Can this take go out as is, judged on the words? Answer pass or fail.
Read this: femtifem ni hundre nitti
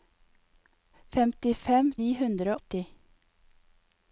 pass